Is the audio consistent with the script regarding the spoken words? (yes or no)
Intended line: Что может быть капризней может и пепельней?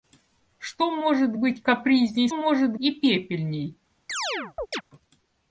yes